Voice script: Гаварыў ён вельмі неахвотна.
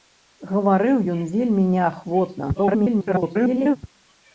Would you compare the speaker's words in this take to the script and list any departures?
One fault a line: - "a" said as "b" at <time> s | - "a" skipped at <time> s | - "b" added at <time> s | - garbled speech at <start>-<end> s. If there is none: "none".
- garbled speech at 2.5-3.8 s